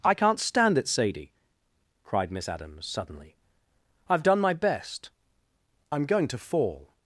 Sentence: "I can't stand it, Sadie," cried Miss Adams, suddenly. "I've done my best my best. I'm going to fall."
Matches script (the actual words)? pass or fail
fail